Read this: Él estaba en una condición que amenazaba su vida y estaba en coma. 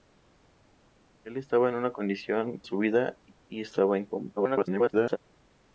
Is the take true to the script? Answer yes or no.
no